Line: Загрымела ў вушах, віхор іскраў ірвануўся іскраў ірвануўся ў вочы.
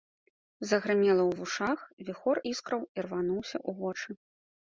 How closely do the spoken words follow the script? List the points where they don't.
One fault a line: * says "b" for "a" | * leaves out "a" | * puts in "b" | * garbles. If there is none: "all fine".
* leaves out "іскраў ірвануўся"